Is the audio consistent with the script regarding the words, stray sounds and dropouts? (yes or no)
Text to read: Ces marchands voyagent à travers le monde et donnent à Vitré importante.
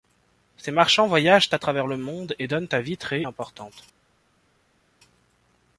yes